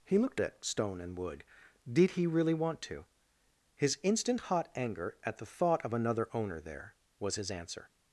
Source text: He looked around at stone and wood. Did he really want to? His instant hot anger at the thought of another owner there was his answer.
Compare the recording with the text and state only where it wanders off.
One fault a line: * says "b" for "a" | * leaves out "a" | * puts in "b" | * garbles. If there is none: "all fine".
* leaves out "around"